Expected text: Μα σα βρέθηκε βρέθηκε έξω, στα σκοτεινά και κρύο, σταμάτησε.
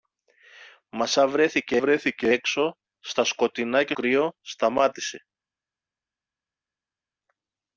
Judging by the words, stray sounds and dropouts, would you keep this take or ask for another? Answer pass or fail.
pass